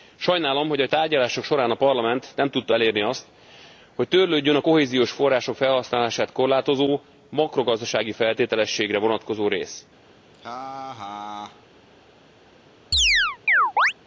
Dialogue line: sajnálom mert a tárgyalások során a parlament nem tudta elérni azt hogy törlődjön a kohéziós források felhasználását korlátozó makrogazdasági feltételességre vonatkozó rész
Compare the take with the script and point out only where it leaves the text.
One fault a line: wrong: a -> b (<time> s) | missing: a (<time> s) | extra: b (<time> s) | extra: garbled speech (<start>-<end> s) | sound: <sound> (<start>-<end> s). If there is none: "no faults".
wrong: mert -> hogy (0.7 s)
sound: laugh (10.3-11.7 s)
sound: chirp (12.9-13.9 s)